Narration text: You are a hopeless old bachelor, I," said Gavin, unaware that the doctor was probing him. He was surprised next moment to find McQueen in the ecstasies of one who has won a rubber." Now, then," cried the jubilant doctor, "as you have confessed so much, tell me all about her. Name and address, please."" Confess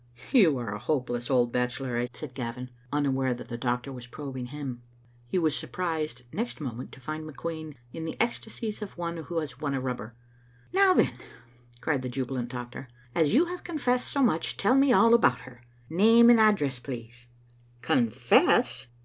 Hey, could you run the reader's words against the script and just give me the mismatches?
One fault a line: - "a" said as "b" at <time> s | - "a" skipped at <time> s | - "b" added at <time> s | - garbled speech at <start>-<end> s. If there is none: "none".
none